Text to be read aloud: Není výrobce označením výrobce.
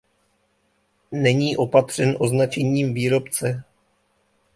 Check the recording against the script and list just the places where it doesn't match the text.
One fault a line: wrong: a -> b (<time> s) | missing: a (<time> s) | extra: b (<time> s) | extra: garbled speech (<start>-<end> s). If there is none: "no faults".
wrong: výrobce -> opatřen (1.6 s)